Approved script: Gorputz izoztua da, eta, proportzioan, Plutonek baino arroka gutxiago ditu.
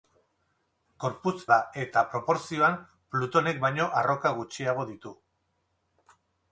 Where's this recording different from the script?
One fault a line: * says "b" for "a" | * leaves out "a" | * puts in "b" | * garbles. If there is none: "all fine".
* leaves out "izoztua"